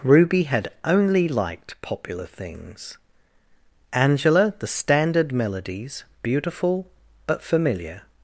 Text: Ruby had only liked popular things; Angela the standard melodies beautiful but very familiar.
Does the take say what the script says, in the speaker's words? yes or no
no